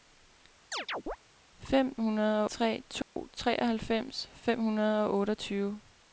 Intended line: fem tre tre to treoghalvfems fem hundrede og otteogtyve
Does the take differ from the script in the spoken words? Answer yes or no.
yes